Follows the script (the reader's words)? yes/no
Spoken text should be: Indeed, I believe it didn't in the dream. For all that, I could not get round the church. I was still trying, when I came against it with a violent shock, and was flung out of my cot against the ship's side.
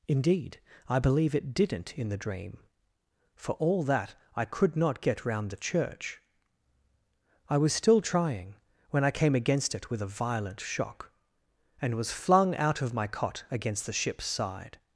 yes